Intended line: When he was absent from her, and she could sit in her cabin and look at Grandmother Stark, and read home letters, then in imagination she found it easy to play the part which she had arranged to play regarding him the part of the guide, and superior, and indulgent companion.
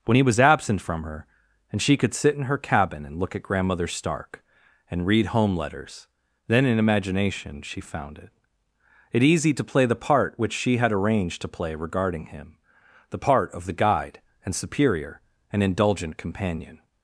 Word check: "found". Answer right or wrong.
right